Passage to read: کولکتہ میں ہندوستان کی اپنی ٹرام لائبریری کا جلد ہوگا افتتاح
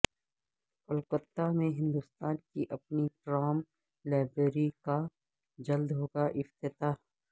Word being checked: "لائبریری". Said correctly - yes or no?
yes